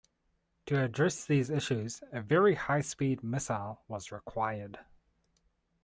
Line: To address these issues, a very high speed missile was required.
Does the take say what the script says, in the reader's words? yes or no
yes